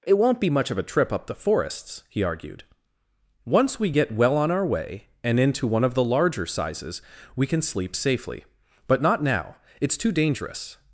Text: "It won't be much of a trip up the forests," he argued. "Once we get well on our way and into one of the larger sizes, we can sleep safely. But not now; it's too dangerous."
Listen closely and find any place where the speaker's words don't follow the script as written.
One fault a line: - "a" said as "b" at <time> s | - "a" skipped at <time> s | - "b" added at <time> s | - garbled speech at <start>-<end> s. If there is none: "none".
none